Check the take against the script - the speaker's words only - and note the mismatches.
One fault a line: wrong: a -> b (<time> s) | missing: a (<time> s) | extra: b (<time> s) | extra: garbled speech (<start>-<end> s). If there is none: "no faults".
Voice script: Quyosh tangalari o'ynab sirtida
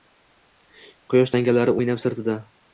no faults